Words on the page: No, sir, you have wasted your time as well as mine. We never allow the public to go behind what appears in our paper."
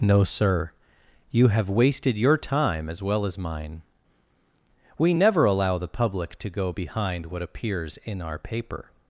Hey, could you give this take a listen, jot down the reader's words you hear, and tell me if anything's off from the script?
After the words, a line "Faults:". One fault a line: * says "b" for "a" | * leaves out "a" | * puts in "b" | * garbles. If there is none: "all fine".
No, sir, you have wasted your time as well as mine. We never allow the public to go behind what appears in our paper."
Faults:
all fine